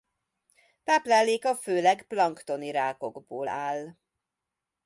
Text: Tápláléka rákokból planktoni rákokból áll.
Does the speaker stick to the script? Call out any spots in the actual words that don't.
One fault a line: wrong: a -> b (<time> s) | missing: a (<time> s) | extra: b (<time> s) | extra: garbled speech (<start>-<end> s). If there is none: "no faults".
wrong: rákokból -> főleg (1.6 s)